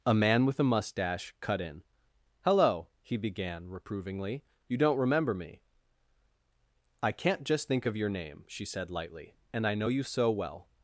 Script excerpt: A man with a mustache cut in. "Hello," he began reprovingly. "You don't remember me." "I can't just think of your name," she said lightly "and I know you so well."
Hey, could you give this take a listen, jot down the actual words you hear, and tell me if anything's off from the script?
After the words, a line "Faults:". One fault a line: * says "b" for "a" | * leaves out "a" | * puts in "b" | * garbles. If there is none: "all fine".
A man with a mustache cut in. "Hello," he began reprovingly. "You don't remember me." "I can't just think of your name," she said lightly "and I know you so well."
Faults:
all fine